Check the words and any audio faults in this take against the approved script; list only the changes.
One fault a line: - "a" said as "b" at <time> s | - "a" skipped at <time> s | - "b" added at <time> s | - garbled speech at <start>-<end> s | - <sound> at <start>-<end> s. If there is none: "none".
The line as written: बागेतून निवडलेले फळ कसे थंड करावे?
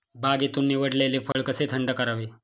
- dropout at 1.3-1.4 s